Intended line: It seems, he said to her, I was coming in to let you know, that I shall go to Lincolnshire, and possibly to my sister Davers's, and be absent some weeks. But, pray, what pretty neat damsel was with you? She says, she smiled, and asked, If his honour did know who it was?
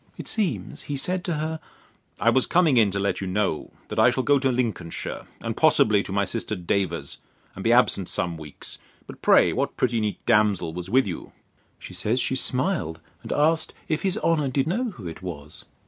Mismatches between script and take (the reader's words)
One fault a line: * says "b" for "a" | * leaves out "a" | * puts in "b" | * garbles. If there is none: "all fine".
all fine